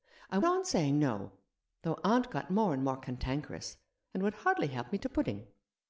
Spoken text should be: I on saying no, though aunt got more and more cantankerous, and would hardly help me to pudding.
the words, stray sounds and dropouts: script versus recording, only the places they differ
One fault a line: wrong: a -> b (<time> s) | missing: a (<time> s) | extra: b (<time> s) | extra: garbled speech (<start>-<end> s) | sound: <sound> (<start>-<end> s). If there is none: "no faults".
no faults